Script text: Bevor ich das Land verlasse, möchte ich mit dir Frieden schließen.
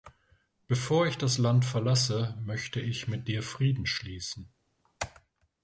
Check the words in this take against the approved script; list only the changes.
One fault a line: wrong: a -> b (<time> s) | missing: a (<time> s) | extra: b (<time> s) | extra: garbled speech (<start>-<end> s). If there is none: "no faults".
no faults